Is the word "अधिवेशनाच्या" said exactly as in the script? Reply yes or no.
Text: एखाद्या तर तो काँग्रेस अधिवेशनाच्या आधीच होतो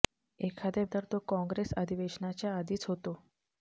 yes